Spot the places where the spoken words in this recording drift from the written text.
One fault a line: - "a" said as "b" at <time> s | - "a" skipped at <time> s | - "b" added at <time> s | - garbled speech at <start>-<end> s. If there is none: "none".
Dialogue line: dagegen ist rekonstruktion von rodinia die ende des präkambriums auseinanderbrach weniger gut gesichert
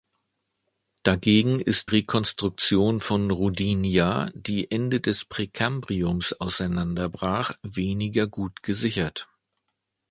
none